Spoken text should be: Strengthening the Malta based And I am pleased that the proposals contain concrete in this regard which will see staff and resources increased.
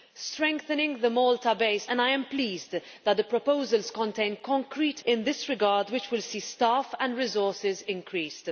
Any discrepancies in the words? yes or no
no